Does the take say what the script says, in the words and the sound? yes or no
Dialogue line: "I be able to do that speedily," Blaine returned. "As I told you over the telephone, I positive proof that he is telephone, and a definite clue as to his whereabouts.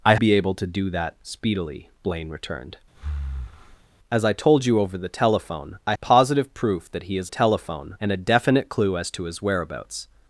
no